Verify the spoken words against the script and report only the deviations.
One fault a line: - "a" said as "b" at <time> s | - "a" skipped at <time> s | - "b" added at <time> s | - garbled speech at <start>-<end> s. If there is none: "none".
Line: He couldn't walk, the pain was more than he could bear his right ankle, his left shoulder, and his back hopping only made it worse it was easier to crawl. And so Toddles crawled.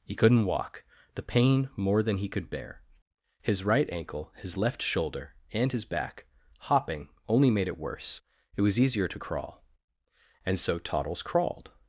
- "was" skipped at 1.7 s